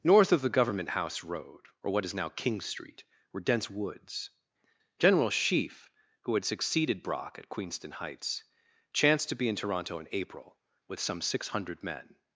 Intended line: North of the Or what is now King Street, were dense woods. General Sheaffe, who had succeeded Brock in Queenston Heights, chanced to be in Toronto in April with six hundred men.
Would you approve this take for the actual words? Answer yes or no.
no